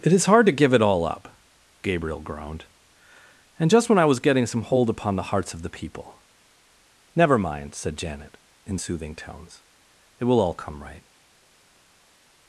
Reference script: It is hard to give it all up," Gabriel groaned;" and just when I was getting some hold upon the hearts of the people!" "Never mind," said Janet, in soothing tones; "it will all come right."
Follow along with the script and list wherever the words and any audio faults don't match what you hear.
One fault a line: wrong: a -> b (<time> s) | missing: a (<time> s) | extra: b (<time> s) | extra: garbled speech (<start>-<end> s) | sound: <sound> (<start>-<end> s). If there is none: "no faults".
no faults